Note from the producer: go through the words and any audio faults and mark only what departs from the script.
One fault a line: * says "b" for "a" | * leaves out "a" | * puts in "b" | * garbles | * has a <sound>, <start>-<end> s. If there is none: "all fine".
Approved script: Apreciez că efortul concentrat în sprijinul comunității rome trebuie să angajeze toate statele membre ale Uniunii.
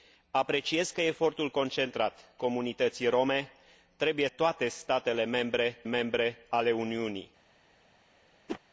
* leaves out "în sprijinul"
* leaves out "să angajeze"
* puts in "membre"
* has a whoosh, 8.5-8.6 s